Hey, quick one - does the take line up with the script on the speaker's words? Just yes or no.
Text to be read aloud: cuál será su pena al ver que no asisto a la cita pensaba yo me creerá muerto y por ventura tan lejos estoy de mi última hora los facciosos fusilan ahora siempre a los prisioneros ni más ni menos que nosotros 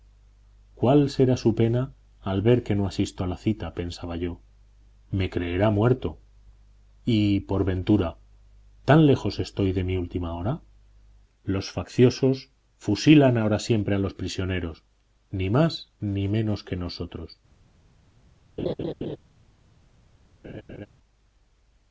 yes